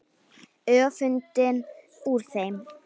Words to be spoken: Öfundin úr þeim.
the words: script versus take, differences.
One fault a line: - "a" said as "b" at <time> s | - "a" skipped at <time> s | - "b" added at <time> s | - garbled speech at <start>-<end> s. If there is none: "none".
none